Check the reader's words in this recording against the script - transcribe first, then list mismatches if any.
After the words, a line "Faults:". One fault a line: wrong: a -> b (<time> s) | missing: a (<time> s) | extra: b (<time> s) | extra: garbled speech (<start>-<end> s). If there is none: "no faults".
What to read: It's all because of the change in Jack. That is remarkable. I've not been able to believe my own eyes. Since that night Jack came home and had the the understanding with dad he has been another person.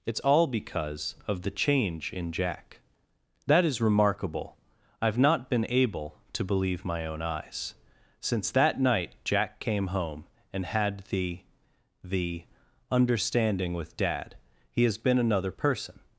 It's all because of the change in Jack. That is remarkable. I've not been able to believe my own eyes. Since that night Jack came home and had the the understanding with dad he has been another person.
Faults:
no faults